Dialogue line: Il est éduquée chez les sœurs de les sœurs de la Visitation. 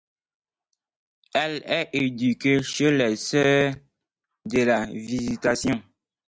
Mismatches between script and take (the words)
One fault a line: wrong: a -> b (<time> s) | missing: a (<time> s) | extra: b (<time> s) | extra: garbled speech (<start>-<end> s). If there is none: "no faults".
wrong: Il -> Elle (1.4 s)
missing: les sœurs de (4.6 s)